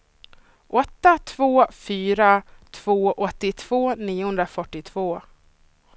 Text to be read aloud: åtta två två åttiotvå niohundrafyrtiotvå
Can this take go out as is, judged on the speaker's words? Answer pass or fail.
fail